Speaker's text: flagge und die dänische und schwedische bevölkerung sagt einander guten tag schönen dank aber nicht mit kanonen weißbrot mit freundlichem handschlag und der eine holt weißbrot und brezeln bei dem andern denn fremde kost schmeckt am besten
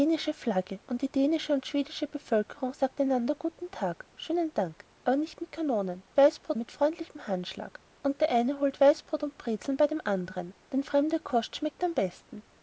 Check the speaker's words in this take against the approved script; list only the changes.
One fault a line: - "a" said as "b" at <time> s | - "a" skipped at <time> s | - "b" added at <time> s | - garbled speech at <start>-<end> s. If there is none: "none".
none